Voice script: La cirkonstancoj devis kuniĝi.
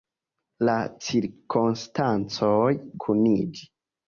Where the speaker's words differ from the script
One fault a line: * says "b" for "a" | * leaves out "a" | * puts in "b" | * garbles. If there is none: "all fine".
* leaves out "devis"